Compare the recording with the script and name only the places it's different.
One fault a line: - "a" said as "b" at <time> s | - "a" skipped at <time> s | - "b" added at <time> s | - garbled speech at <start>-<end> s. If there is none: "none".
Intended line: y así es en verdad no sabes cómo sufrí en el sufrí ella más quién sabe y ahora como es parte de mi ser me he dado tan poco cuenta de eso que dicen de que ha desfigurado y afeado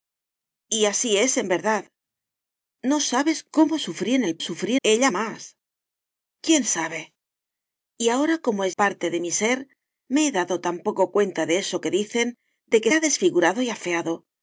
none